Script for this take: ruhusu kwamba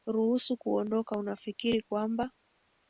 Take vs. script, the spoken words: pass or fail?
fail